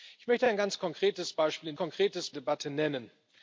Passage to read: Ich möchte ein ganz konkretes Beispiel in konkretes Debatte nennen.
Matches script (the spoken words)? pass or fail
pass